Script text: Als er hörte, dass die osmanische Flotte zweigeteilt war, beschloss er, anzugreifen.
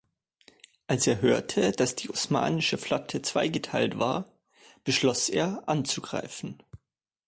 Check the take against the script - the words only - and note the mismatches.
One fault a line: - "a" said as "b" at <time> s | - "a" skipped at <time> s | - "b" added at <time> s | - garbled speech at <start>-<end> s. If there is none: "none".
none